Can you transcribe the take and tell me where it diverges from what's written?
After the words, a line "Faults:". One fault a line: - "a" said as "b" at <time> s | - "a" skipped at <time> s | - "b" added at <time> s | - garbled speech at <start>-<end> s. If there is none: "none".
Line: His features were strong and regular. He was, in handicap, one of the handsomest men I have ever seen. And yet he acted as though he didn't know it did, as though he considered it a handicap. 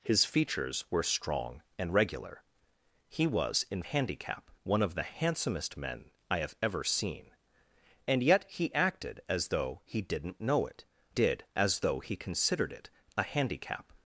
His features were strong and regular. He was, in handicap, one of the handsomest men I have ever seen. And yet he acted as though he didn't know it did, as though he considered it a handicap.
Faults:
none